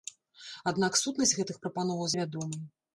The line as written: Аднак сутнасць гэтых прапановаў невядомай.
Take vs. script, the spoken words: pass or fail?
pass